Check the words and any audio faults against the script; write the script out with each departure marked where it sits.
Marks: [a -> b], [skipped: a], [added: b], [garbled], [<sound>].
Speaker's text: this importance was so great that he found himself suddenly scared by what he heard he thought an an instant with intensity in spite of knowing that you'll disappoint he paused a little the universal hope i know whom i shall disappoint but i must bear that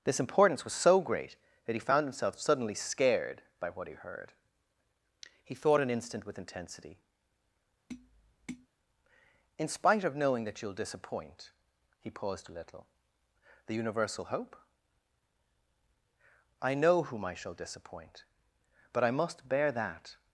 this importance was so great that he found himself suddenly scared by what he heard he thought an [skipped: an] instant with intensity [tap] in spite of knowing that you'll disappoint he paused a little the universal hope i know whom i shall disappoint but i must bear that